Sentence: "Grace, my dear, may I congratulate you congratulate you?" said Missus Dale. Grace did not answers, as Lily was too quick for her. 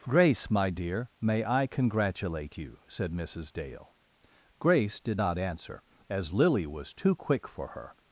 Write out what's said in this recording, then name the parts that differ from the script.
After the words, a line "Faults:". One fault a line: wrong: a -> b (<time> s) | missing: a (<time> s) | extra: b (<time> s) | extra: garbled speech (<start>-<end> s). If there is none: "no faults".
"Grace, my dear, may I congratulate you?" said Missus Dale. Grace did not answer, as Lily was too quick for her.
Faults:
missing: congratulate you (2.8 s)
wrong: answers -> answer (5.4 s)